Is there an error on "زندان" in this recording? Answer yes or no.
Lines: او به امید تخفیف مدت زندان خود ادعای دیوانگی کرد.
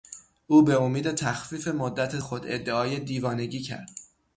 yes